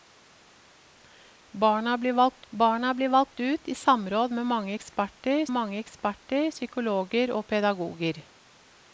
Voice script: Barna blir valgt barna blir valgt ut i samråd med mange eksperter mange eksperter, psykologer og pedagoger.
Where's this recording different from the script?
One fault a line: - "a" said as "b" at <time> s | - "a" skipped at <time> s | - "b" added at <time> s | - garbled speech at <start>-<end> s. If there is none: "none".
none